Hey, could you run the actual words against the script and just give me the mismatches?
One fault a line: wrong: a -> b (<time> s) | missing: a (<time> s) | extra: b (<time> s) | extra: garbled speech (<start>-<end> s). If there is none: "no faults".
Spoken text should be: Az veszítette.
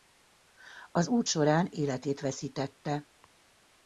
extra: út során életét (1.1 s)